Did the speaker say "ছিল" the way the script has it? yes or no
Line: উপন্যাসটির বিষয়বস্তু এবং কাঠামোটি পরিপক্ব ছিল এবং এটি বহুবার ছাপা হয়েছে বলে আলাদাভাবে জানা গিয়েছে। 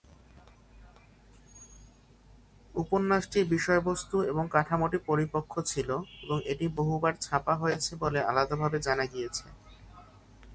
yes